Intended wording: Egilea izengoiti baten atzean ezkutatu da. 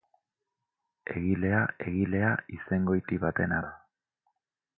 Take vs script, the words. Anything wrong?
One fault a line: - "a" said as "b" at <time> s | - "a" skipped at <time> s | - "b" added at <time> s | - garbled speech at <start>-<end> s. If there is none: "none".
- "egilea" added at 1.9 s
- "atzean ezkutatu" skipped at 3.6 s